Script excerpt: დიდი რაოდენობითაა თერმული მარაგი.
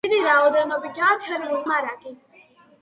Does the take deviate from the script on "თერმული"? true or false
false